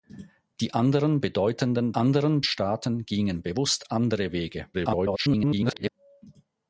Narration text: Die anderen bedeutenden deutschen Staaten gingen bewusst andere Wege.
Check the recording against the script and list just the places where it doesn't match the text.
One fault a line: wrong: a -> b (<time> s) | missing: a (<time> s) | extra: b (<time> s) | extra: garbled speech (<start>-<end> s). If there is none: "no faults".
wrong: deutschen -> anderen (1.9 s)
extra: garbled speech (4.7-5.9 s)